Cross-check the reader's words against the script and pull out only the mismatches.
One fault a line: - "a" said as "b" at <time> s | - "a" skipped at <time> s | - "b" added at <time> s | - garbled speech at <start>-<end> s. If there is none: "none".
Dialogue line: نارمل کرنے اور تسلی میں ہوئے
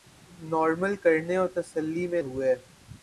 none